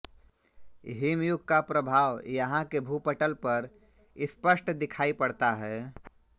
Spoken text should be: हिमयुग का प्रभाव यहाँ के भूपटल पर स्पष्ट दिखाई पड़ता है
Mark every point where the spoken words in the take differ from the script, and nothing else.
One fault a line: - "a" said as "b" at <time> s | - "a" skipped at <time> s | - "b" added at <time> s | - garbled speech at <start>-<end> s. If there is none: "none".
none